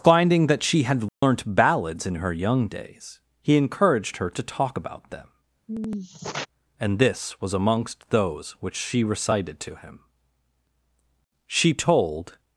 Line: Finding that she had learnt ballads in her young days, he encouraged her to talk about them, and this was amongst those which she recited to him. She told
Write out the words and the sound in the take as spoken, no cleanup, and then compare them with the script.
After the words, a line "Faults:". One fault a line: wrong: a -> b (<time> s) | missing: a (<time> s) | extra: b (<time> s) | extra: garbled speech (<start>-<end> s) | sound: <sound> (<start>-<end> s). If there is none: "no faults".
Finding that she had learnt ballads in her young days, he encouraged her to talk about them, and this was amongst those which she recited to him. She told
Faults:
sound: dropout (1.1-1.2 s)
sound: sigh (5.7-6.5 s)